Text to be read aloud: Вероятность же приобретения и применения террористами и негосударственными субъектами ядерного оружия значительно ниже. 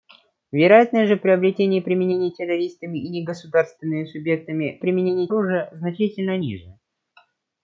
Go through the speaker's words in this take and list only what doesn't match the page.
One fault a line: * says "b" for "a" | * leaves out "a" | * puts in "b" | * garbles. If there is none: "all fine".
* says "применения" for "ядерного"